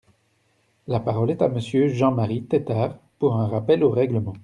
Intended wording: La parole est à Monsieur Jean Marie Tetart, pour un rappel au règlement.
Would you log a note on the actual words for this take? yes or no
no